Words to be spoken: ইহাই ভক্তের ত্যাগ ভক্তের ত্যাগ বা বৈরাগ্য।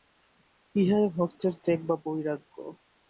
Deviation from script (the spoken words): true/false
true